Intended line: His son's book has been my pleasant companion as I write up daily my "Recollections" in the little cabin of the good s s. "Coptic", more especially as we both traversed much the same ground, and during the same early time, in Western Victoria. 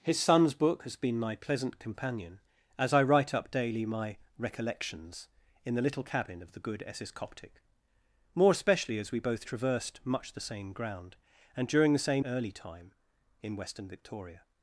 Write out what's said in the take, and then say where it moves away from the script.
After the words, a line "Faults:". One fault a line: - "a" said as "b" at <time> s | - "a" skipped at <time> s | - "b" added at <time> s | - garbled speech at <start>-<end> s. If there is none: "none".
His son's book has been my pleasant companion as I write up daily my "Recollections" in the little cabin of the good s s. "Coptic", more especially as we both traversed much the same ground, and during the same early time, in Western Victoria.
Faults:
none